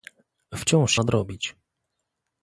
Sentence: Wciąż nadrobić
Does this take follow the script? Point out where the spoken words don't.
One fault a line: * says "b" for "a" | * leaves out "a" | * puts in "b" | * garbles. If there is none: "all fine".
all fine